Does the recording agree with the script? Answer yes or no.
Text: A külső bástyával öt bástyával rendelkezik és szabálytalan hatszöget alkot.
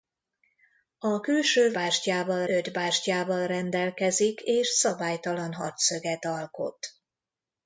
yes